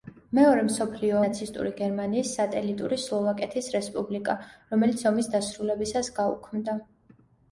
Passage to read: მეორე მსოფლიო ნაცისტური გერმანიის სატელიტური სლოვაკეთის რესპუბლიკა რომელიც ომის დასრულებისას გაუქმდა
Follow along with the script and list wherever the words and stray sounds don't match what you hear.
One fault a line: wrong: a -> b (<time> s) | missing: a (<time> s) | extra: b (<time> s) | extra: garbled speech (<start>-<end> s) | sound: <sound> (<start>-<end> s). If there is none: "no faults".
no faults